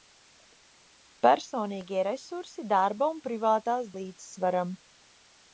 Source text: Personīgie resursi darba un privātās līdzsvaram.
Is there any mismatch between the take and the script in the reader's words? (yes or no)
no